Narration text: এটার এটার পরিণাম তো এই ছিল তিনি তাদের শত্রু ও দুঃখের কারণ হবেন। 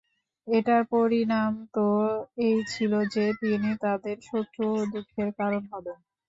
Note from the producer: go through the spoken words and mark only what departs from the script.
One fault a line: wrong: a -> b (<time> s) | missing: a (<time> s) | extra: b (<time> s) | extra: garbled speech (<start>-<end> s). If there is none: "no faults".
missing: এটার (0.8 s)
extra: যে (3.1 s)